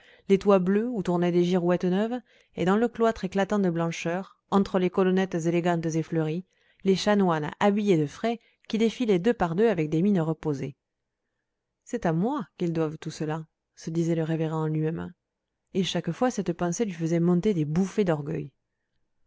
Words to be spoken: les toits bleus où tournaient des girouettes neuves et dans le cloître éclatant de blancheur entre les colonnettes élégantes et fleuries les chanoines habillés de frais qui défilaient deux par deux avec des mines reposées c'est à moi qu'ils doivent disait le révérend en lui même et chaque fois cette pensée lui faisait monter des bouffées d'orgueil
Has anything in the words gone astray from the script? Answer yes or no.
yes